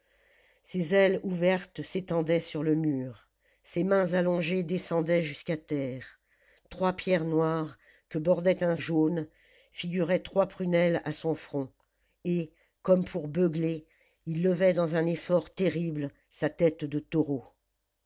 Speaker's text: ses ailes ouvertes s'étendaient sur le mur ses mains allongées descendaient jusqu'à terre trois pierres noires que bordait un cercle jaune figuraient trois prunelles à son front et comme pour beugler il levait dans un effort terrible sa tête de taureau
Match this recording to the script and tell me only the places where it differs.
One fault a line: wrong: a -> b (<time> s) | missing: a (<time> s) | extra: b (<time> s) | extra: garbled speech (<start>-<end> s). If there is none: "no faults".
missing: cercle (8.8 s)